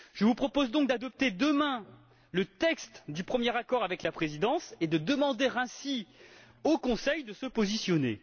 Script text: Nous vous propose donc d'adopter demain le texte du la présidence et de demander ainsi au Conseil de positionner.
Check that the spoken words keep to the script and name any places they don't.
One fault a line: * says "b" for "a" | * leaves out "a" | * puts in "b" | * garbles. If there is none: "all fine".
* says "Je" for "Nous"
* puts in "premier accord avec"
* puts in "se"